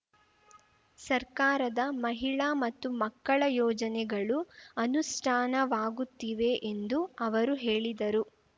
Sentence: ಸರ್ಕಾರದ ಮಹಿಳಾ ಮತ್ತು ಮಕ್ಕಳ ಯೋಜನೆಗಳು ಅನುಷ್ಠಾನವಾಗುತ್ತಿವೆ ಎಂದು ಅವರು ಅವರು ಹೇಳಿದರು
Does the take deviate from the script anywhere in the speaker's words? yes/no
yes